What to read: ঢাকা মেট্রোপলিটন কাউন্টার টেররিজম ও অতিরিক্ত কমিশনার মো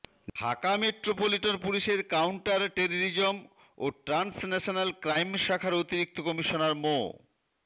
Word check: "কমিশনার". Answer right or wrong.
right